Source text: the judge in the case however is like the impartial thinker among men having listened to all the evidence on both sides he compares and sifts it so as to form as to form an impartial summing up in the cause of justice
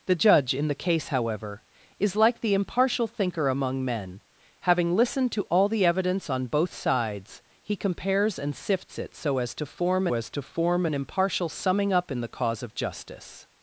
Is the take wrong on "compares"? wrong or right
right